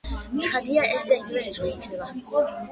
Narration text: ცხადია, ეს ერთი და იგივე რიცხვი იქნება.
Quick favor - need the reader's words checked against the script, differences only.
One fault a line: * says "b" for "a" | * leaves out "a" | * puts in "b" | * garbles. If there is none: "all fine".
* leaves out "ერთი"